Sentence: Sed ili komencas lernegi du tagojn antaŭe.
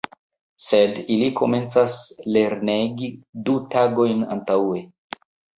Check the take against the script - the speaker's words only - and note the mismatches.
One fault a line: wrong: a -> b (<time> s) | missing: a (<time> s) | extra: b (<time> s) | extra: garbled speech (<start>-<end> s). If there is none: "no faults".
no faults